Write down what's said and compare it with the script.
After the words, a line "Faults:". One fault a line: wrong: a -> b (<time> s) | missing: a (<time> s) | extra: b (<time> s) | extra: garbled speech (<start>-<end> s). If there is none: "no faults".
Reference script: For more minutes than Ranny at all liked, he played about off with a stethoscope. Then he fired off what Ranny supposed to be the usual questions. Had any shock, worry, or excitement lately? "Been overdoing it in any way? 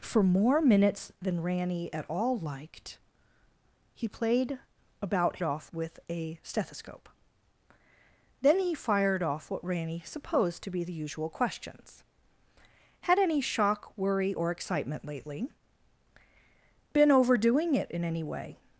For more minutes than Ranny at all liked, he played about off with a stethoscope. Then he fired off what Ranny supposed to be the usual questions. Had any shock, worry, or excitement lately? "Been overdoing it in any way?
Faults:
no faults